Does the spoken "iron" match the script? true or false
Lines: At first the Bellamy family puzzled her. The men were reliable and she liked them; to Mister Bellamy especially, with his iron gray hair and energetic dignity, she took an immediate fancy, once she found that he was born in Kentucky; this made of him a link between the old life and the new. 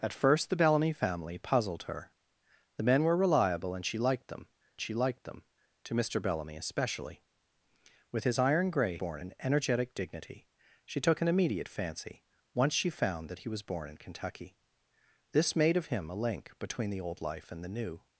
true